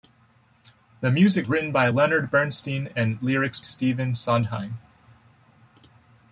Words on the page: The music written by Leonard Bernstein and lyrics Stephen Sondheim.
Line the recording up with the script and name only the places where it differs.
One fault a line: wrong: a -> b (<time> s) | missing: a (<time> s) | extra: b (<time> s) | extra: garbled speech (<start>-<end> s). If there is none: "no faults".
no faults